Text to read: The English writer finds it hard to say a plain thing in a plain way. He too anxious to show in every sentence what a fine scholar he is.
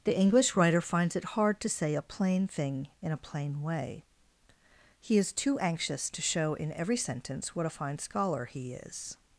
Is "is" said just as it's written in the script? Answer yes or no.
yes